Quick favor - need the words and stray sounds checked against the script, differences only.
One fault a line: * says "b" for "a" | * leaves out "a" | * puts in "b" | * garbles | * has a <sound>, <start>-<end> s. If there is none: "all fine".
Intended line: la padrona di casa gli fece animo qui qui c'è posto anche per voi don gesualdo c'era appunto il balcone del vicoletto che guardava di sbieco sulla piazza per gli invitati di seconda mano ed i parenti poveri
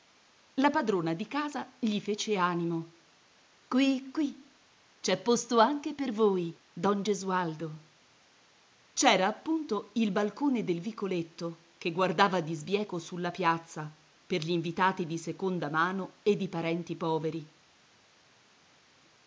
all fine